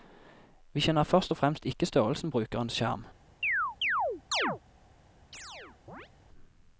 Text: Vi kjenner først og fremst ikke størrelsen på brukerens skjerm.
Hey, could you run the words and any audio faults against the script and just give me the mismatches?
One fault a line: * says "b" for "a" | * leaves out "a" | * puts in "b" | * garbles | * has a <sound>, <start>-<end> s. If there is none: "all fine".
* leaves out "på"
* has a chirp, 3.4-4.6 s
* has a chirp, 5.3-6.1 s